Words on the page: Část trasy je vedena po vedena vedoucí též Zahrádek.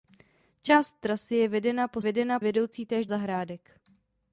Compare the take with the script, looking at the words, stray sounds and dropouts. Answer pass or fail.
pass